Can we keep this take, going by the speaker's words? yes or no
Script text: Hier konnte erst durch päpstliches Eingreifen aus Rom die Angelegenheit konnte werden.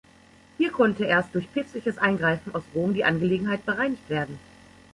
no